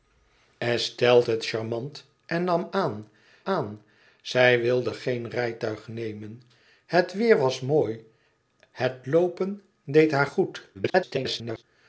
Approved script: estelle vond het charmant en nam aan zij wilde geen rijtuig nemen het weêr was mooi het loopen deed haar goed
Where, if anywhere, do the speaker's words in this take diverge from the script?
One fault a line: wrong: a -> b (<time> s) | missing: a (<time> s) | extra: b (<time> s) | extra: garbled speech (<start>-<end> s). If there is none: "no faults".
missing: vond (1.2 s)
extra: aan (3.4 s)
extra: garbled speech (10.7-11.6 s)